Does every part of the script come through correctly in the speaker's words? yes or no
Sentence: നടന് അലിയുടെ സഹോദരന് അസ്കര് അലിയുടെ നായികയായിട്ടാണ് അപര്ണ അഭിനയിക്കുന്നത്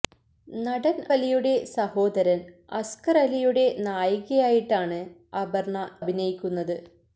yes